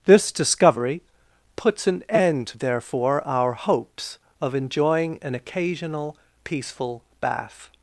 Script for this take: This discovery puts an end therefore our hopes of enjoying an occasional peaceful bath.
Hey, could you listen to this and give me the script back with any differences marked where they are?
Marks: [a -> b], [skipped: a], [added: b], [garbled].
This discovery puts an end therefore our hopes of enjoying an occasional peaceful bath.